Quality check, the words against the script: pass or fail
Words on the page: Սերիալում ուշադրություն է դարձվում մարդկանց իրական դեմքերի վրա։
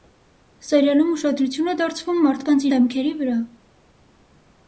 fail